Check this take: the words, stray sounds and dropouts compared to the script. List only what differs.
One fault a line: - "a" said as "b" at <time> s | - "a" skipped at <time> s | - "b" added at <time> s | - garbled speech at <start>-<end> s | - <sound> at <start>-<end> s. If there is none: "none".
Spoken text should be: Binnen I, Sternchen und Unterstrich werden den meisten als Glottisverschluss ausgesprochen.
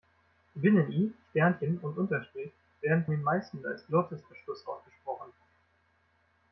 none